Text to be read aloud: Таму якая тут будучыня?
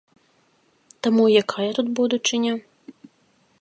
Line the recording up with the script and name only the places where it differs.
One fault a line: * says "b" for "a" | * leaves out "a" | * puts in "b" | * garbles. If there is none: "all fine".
all fine